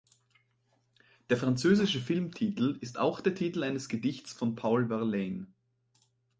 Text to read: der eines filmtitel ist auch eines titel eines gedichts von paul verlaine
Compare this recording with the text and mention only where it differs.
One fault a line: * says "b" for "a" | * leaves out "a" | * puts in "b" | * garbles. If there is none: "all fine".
* says "französische" for "eines"
* says "der" for "eines"